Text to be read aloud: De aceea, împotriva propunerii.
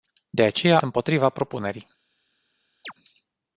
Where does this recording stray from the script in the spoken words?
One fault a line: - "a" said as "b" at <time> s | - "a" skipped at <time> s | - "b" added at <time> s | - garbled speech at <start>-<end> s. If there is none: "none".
none